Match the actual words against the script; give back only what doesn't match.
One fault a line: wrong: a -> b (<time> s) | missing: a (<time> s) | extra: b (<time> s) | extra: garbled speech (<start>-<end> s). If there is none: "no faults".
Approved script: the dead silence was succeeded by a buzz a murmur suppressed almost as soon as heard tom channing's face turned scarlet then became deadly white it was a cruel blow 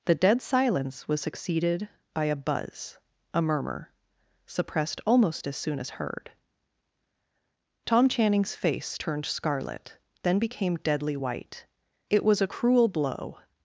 no faults